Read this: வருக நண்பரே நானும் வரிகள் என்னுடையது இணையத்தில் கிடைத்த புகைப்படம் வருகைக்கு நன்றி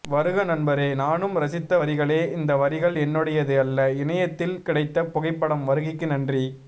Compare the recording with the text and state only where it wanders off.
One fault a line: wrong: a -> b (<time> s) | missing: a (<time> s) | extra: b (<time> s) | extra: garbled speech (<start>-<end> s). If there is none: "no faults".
extra: ரசித்த வரிகளே இந்த (1.4 s)
extra: அல்ல (3.6 s)